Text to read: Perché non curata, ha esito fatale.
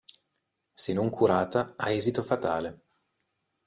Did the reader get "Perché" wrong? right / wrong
wrong